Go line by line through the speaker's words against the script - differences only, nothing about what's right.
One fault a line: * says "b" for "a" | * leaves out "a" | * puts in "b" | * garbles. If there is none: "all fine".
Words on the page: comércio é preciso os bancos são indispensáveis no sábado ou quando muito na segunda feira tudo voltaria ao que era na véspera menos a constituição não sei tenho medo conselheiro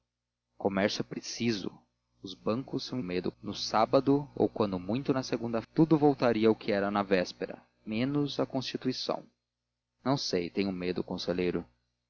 * says "medo" for "indispensáveis"
* leaves out "feira"